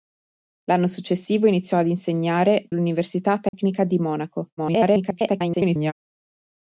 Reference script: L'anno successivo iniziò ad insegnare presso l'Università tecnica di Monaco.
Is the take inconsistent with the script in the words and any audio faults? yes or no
yes